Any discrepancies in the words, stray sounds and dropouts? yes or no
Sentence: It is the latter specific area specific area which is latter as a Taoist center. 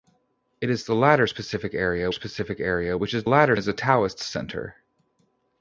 no